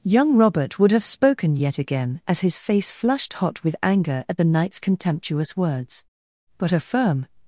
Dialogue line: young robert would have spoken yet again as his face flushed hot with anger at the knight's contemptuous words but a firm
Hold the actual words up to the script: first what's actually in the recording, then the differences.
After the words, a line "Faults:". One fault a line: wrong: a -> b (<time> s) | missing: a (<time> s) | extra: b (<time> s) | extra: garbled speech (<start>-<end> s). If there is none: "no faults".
young robert would have spoken yet again as his face flushed hot with anger at the knight's contemptuous words but a firm
Faults:
no faults